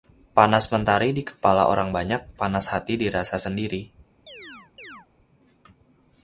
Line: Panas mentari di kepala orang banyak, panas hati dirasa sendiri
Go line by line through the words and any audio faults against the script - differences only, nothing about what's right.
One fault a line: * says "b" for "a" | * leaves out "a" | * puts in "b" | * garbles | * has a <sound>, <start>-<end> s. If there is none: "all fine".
* has a chirp, 4.3-5.1 s